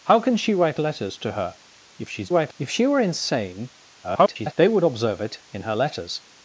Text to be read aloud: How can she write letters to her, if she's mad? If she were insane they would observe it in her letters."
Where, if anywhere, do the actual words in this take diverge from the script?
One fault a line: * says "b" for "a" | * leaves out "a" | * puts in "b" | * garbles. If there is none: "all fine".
* says "write" for "mad"
* garbles